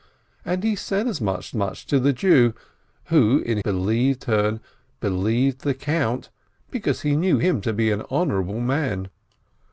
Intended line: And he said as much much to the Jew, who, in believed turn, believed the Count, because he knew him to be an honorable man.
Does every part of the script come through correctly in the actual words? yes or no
yes